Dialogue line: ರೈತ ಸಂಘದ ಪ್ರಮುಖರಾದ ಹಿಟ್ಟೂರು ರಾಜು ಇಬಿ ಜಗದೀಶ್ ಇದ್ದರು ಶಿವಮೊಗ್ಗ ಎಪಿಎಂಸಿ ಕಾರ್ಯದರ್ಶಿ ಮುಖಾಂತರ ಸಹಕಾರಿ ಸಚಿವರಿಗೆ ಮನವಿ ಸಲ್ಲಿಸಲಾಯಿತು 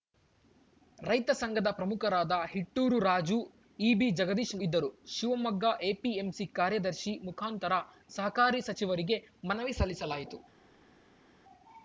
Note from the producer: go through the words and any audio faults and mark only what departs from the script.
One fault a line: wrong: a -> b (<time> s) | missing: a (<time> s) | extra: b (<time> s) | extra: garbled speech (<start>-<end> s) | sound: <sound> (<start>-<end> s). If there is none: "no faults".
no faults